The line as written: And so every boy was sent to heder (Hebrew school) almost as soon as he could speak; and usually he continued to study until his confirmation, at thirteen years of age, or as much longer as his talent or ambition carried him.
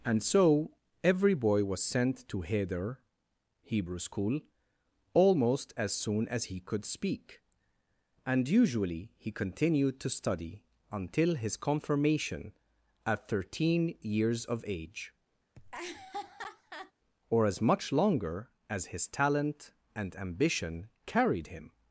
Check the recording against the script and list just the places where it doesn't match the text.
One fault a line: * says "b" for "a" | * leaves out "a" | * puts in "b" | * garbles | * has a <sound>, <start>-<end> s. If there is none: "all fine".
* has a laugh, 15.5-16.9 s
* says "and" for "or"